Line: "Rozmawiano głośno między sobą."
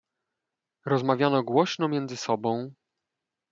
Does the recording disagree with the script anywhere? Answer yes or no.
no